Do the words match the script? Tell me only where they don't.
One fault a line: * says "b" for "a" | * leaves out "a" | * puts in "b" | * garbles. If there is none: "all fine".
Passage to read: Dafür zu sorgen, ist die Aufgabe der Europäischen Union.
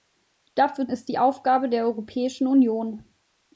* leaves out "zu sorgen"